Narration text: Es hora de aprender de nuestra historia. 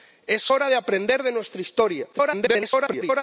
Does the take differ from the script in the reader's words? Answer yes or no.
yes